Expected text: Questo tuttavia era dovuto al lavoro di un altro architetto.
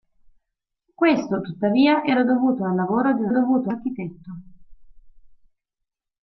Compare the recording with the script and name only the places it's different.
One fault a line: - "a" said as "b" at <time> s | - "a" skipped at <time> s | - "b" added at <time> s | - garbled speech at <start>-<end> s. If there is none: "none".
- "altro" said as "dovuto" at 3.3 s